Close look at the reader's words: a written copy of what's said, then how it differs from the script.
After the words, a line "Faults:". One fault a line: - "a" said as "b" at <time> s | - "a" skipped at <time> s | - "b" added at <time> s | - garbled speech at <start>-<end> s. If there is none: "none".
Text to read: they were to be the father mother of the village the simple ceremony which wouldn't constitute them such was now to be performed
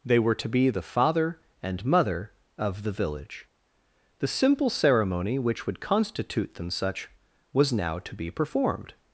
they were to be the father and mother of the village the simple ceremony which would constitute them such was now to be performed
Faults:
- "and" added at 1.6 s
- "wouldn't" said as "would" at 5.7 s